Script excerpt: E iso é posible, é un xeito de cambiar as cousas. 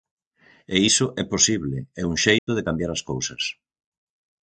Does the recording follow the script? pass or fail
pass